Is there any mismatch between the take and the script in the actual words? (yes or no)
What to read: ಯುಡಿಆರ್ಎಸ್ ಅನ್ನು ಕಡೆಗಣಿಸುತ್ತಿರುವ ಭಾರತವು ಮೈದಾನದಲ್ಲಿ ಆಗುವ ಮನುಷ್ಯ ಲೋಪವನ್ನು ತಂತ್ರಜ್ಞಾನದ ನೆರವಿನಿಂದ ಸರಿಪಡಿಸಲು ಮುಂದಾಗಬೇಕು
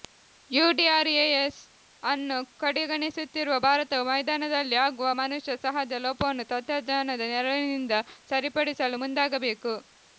yes